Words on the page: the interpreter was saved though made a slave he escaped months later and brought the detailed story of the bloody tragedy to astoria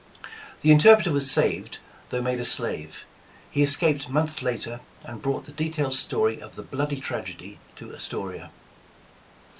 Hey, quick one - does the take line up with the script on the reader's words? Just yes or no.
yes